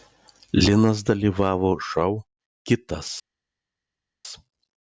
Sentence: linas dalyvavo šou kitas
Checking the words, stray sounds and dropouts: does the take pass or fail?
pass